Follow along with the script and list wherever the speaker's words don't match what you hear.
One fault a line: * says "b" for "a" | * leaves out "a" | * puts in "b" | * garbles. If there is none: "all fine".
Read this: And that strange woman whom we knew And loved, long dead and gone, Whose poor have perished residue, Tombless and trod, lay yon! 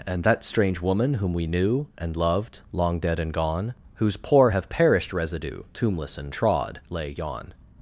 all fine